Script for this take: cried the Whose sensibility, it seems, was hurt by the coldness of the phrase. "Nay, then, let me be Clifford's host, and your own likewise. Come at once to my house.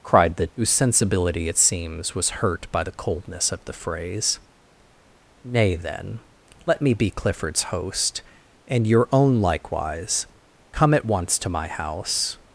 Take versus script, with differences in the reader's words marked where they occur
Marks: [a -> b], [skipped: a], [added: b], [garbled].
cried the Whose sensibility, it seems, was hurt by the coldness of the phrase. "Nay, then, let me be Clifford's host, and your own likewise. Come at once to my house.